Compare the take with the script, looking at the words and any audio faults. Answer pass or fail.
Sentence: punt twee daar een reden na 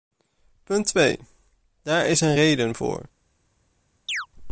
fail